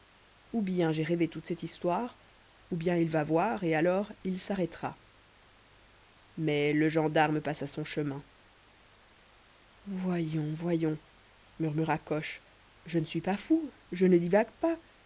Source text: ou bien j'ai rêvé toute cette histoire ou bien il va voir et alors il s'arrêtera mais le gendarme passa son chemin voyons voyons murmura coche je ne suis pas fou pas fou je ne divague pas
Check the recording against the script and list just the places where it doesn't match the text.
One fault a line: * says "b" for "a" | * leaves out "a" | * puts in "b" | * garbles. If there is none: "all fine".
* leaves out "pas fou"